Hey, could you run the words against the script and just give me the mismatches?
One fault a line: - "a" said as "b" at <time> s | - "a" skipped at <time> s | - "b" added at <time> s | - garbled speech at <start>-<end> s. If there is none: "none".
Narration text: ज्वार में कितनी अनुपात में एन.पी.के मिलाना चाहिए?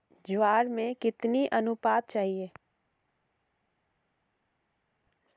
- "में एन.पी.के मिलाना" skipped at 2.1 s